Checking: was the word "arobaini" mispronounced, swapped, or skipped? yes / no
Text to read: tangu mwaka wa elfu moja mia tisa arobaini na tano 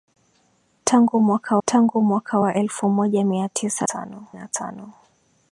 yes